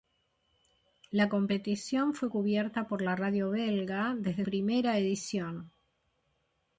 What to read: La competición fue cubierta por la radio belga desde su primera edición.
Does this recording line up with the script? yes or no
no